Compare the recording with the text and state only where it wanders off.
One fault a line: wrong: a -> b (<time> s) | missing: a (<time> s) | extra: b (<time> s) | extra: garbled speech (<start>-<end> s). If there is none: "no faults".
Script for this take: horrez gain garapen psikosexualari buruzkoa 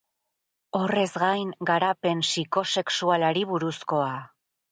no faults